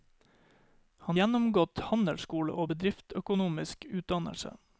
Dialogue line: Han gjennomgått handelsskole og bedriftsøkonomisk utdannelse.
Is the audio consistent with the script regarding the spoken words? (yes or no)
yes